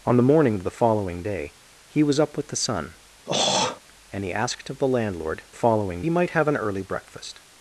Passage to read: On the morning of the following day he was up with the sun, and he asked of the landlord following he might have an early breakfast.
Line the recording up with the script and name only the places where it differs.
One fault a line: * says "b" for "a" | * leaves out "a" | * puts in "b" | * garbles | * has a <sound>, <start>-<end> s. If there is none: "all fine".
* has a throat clearing, 3.3-3.8 s